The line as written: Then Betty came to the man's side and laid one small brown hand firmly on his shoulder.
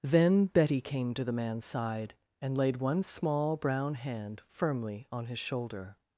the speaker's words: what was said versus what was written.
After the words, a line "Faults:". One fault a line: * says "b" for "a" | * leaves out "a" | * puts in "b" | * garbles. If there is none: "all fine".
Then Betty came to the man's side and laid one small brown hand firmly on his shoulder.
Faults:
all fine